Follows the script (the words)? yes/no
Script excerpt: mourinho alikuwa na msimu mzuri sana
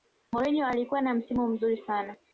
yes